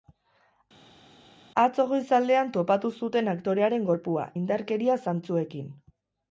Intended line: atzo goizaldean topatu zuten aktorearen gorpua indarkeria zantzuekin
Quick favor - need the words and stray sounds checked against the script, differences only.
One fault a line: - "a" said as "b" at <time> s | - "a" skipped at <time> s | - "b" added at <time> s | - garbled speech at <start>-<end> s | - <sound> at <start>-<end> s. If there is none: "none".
none